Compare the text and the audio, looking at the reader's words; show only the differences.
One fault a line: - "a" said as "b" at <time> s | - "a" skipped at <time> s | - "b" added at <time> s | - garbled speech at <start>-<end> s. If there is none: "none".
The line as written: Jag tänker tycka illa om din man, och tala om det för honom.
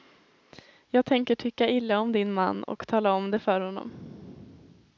none